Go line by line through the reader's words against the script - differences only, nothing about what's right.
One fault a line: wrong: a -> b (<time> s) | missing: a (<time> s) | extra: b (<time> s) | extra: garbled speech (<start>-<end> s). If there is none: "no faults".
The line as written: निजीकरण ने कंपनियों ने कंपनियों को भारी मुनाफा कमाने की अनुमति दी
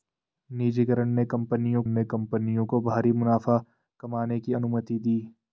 no faults